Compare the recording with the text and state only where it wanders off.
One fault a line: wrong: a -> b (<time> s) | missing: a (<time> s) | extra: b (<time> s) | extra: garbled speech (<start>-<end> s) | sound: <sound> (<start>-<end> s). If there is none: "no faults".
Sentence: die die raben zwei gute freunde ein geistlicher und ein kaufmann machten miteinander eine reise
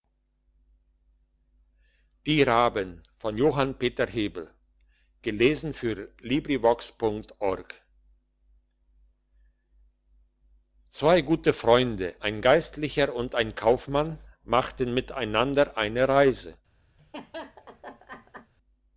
missing: die (2.4 s)
sound: laugh (17.0-18.5 s)